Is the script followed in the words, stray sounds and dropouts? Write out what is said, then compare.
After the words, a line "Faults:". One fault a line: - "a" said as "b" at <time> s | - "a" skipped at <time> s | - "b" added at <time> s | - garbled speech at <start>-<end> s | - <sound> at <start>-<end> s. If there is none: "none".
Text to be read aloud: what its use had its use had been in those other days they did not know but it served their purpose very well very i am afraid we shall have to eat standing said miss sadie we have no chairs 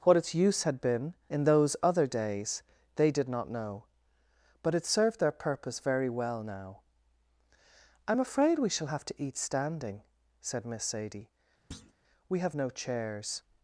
what its use had been in those other days they did not know but it served their purpose very well now i am afraid we shall have to eat standing said miss sadie we have no chairs
Faults:
- "its use had" skipped at 0.8 s
- "very" said as "now" at 6.4 s
- thud at 11.7-11.9 s